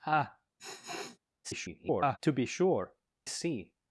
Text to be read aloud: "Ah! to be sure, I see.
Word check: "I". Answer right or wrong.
wrong